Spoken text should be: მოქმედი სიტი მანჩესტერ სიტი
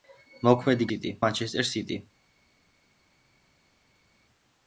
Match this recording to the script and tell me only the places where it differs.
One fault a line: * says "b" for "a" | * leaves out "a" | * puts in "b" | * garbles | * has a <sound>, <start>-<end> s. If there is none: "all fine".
all fine